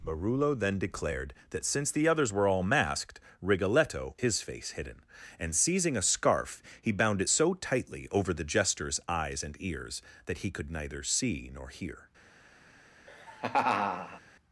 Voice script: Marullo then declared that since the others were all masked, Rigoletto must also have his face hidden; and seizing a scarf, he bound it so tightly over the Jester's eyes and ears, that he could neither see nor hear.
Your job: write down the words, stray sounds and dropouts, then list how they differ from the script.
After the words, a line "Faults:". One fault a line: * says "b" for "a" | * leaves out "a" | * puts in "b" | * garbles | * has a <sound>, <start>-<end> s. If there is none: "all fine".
Marullo then declared that since the others were all masked, Rigoletto his face hidden; and seizing a scarf, he bound it so tightly over the Jester's eyes and ears, that he could neither see nor hear.
Faults:
* leaves out "must also have"
* has a laugh, 13.1-14.2 s